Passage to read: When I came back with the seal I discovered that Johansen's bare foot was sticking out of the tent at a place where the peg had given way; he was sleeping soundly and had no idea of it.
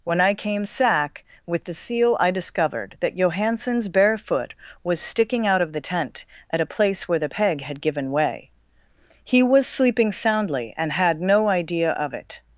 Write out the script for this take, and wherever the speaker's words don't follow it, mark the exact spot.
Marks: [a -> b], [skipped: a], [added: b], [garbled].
When I came [back -> sack] with the seal I discovered that Johansen's bare foot was sticking out of the tent at a place where the peg had given way; he was sleeping soundly and had no idea of it.